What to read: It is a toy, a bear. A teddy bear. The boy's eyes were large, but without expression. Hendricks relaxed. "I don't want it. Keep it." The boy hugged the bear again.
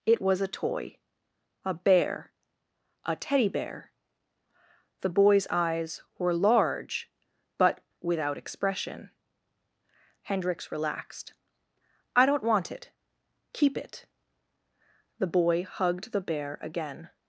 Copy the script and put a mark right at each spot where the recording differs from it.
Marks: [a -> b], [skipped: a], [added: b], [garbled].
It [is -> was] a toy, a bear. A teddy bear. The boy's eyes were large, but without expression. Hendricks relaxed. "I don't want it. Keep it." The boy hugged the bear again.